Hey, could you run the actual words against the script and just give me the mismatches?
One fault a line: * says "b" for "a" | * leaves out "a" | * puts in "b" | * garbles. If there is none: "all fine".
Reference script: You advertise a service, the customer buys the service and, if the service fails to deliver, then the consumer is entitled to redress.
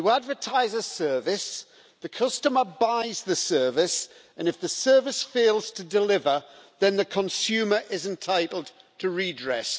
all fine